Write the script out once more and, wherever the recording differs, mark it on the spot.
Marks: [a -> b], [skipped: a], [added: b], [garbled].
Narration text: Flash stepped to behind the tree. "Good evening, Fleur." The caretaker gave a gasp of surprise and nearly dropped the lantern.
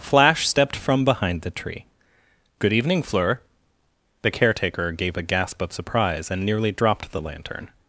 Flash stepped [to -> from] behind the tree. "Good evening, Fleur." The caretaker gave a gasp of surprise and nearly dropped the lantern.